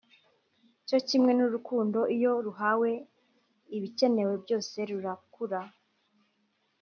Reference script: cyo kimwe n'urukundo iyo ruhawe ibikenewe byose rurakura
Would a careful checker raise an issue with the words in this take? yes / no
no